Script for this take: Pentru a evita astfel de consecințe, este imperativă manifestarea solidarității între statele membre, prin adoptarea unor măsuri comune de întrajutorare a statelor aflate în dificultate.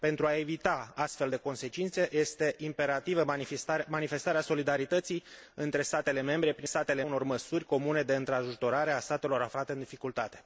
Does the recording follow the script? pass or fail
fail